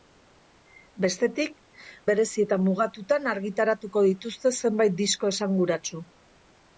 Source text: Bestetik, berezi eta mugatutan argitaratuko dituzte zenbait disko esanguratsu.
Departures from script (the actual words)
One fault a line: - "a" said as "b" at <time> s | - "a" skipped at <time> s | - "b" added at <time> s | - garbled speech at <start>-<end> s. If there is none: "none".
none